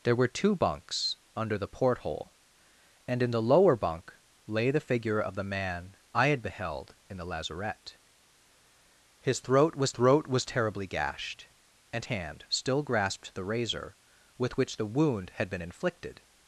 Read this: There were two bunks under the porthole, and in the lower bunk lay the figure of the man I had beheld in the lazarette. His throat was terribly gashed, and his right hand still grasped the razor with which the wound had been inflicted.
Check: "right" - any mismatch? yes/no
yes